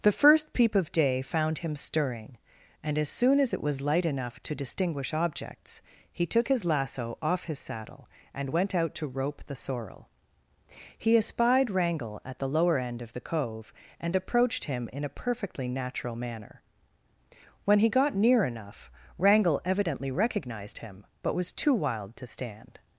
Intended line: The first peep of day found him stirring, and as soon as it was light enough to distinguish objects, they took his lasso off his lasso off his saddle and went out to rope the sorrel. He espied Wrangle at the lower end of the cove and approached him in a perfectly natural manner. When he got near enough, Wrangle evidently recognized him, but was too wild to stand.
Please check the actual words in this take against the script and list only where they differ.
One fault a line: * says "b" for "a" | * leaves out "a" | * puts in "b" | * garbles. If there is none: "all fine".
* says "he" for "they"
* leaves out "lasso off his"